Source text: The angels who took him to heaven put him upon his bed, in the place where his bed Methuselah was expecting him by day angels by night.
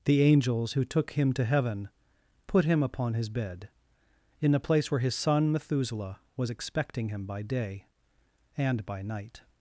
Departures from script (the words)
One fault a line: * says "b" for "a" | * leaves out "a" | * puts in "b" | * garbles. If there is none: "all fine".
* says "son" for "bed"
* says "and" for "angels"